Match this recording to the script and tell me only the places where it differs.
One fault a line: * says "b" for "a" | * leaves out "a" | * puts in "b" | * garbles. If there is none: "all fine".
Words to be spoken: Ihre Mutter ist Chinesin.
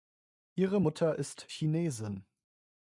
all fine